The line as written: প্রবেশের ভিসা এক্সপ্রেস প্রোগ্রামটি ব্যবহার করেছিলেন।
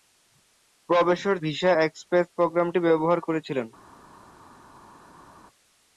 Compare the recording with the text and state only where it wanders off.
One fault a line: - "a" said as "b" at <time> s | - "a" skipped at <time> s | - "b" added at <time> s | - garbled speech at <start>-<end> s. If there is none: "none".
none